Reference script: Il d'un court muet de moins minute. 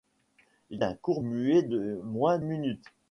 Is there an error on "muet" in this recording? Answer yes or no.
no